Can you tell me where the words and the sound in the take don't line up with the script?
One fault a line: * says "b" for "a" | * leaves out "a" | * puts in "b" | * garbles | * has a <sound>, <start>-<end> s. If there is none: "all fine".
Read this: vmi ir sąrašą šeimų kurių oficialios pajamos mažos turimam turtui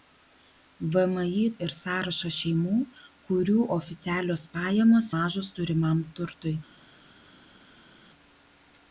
all fine